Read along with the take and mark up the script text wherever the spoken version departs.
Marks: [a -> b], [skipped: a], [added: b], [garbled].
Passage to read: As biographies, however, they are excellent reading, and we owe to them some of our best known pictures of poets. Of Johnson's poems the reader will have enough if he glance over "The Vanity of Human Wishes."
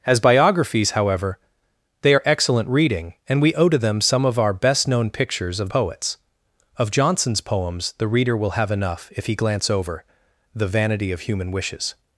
As biographies, however, they are excellent reading, and we owe to them some of our best known pictures of poets. Of Johnson's poems the reader will have enough if he glance over "The Vanity of Human Wishes."